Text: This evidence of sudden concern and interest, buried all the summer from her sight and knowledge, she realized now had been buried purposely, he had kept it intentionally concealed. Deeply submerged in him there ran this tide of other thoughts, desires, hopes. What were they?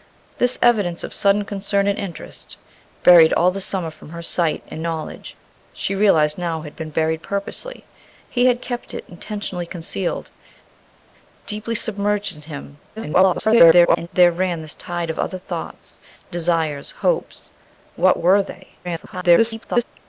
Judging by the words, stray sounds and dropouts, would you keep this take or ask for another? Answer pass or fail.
fail